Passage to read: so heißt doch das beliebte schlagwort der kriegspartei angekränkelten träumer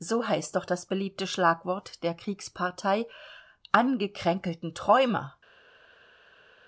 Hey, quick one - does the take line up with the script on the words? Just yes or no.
yes